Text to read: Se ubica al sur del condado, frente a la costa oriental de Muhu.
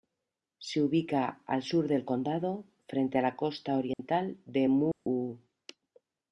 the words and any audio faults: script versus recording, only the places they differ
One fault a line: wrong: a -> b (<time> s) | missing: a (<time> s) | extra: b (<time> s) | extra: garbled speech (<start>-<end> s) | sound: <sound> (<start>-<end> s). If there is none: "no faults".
sound: dropout (3.9-4.0 s)
sound: dropout (4.9-5.1 s)